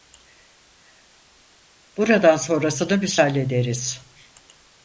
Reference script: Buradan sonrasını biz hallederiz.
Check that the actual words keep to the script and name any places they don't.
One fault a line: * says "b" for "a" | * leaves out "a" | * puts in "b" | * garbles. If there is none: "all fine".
all fine